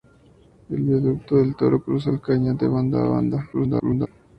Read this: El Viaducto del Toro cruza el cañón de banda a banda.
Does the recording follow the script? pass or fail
fail